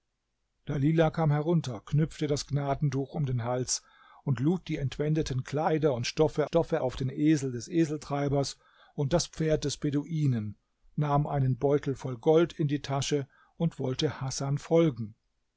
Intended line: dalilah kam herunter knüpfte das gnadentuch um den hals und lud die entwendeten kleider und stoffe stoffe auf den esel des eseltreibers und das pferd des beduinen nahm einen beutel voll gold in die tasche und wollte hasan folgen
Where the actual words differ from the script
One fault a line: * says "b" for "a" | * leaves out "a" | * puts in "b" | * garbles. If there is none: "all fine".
all fine